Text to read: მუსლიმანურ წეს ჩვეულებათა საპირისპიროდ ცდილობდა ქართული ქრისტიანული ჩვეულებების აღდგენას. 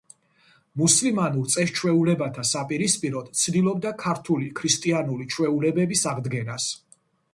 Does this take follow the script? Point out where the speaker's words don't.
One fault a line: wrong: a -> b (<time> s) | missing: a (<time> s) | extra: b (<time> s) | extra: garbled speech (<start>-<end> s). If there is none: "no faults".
no faults